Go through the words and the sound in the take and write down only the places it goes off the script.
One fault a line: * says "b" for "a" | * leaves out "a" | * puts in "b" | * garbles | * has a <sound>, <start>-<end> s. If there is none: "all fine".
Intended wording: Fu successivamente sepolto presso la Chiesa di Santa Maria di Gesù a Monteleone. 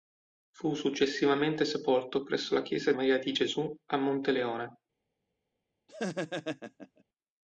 * leaves out "di Santa"
* has a laugh, 5.9-7.0 s